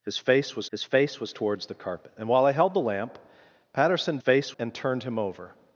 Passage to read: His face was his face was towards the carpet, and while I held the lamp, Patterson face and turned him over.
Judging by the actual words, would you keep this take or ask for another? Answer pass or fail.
pass